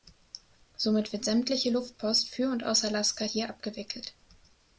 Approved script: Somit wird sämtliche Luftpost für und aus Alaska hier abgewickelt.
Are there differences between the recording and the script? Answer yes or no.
no